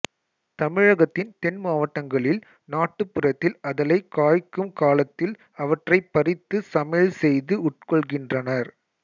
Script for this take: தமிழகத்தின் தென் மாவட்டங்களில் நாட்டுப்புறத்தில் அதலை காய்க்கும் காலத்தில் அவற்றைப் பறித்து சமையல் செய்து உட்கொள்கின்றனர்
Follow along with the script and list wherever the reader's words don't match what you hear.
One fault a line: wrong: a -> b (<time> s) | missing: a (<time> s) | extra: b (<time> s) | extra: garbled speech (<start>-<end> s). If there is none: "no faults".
no faults